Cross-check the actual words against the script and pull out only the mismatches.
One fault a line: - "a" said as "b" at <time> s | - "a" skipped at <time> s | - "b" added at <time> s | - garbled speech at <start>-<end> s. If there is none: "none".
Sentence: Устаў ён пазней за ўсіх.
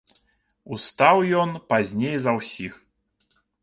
none